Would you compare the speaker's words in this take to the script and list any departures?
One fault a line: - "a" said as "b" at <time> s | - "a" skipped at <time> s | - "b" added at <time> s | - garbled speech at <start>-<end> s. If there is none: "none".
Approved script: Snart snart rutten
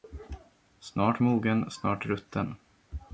- "mogen" added at 1.2 s